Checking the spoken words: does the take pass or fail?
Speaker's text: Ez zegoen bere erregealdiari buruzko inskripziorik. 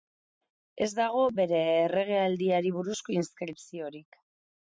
fail